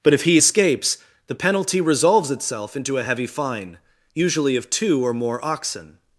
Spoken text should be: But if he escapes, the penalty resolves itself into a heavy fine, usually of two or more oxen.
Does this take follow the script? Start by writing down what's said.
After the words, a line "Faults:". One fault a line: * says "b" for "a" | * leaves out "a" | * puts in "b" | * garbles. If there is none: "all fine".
But if he escapes, the penalty resolves itself into a heavy fine, usually of two or more oxen.
Faults:
all fine